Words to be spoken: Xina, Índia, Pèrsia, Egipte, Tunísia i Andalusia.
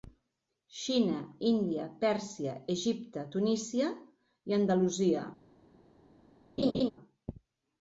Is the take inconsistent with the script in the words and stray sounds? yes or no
yes